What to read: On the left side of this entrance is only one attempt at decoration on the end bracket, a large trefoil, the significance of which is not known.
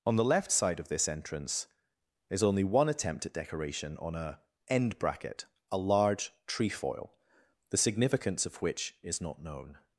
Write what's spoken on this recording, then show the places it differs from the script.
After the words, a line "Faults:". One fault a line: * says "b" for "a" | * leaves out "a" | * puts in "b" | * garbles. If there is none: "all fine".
On the left side of this entrance is only one attempt at decoration on a end bracket, a large trefoil, the significance of which is not known.
Faults:
* says "a" for "the"